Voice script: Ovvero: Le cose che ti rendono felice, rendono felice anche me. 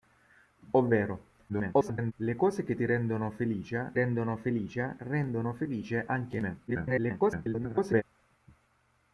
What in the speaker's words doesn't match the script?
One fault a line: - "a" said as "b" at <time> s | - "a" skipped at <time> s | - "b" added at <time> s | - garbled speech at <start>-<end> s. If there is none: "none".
- garbled speech at 1.5-2.1 s
- "rendono felice" added at 5.0 s
- garbled speech at 6.7-8.0 s